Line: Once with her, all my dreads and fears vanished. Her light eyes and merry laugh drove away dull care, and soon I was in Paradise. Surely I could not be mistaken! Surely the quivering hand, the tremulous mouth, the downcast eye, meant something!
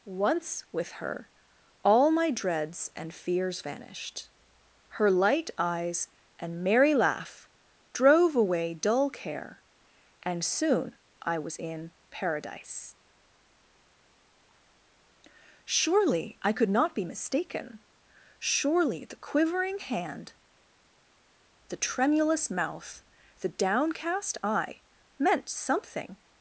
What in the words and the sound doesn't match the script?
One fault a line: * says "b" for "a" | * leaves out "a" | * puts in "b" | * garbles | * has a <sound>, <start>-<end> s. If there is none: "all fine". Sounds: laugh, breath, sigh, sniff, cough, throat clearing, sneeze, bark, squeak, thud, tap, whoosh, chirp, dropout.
all fine